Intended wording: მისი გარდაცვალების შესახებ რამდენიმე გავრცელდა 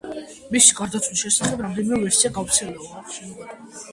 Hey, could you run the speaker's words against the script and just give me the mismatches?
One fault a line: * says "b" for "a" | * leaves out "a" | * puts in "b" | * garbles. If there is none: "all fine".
* puts in "ვერსია"